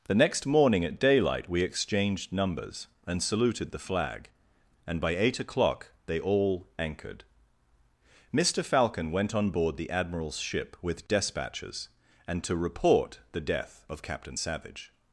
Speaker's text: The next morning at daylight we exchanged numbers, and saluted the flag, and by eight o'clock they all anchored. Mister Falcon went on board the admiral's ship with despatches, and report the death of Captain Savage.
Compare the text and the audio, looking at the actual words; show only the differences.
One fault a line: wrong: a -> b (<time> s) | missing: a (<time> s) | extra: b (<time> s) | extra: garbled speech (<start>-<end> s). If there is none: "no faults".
extra: to (12.4 s)